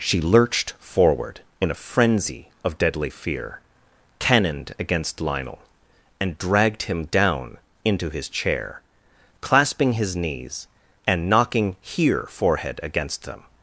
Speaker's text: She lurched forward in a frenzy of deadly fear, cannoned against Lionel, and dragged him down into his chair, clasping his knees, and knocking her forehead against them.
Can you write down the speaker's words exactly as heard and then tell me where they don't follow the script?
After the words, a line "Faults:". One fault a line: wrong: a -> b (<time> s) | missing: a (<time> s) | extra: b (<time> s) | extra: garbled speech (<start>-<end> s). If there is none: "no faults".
She lurched forward in a frenzy of deadly fear, cannoned against Lionel, and dragged him down into his chair, clasping his knees, and knocking here forehead against them.
Faults:
wrong: her -> here (11.8 s)